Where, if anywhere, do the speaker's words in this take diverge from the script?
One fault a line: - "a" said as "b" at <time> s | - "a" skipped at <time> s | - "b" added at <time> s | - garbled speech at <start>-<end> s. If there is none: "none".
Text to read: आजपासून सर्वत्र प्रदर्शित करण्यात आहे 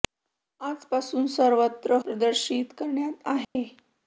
none